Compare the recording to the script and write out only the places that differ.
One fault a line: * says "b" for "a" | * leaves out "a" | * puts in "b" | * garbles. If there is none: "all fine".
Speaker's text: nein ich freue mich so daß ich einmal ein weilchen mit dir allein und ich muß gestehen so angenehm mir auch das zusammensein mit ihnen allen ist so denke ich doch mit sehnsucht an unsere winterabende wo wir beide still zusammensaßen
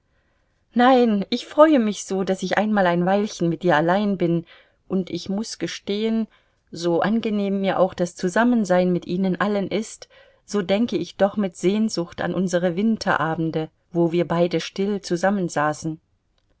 * puts in "bin"